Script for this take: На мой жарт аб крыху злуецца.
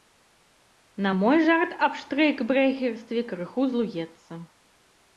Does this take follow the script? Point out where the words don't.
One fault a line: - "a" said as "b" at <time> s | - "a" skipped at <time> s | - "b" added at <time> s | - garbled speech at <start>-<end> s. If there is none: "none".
- "штрэйкбрэхерстве" added at 2.0 s